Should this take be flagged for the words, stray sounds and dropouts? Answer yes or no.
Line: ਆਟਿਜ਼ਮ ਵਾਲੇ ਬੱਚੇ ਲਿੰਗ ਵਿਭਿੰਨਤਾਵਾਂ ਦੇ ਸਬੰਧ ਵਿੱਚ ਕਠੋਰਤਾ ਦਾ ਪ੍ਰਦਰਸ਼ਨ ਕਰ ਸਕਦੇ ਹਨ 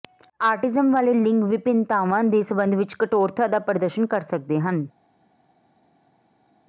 yes